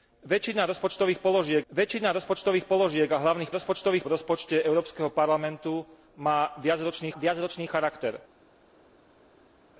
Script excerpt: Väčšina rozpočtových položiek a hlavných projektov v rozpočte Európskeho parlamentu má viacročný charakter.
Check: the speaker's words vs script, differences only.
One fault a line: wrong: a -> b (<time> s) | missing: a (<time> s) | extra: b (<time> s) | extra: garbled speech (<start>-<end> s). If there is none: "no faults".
extra: väčšina rozpočtových položiek (1.7 s)
wrong: projektov -> rozpočtových (3.5 s)
extra: viacročný (7.2 s)